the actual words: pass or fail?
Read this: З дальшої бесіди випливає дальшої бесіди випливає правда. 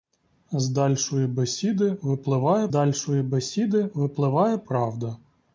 pass